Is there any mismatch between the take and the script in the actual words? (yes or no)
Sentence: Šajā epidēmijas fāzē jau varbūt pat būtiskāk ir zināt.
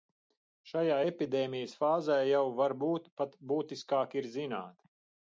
no